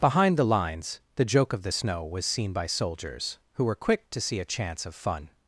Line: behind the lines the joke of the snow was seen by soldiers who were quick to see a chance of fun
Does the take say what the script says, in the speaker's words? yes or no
yes